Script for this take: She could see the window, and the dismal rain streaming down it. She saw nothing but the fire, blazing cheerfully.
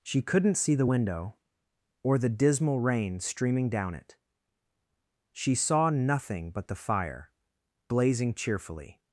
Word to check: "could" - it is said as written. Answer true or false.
false